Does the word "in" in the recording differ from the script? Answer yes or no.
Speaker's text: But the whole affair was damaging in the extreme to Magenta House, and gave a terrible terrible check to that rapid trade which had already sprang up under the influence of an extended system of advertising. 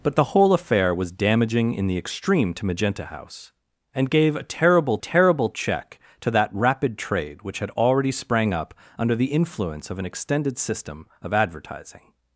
no